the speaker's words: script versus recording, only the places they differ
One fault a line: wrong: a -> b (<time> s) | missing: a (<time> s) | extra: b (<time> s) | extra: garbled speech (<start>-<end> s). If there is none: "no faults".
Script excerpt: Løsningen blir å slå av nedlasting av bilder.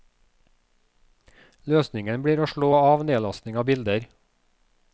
no faults